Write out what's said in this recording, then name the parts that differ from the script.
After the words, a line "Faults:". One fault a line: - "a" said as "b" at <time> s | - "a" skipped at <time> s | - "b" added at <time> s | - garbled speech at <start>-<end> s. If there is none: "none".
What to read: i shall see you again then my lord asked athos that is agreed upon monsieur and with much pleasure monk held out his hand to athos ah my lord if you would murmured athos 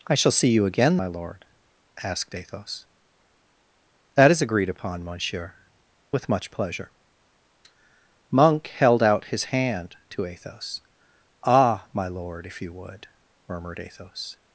i shall see you again my lord asked athos that is agreed upon monsieur with much pleasure monk held out his hand to athos ah my lord if you would murmured athos
Faults:
- "then" skipped at 1.0 s
- "and" skipped at 5.5 s